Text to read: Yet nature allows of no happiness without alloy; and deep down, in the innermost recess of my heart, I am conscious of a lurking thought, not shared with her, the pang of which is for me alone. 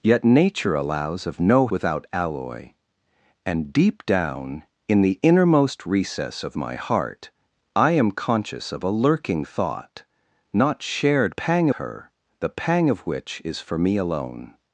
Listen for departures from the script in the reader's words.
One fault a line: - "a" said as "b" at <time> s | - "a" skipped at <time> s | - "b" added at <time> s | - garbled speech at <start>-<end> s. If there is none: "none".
- "happiness" skipped at 1.7 s
- "with" said as "pang" at 11.3 s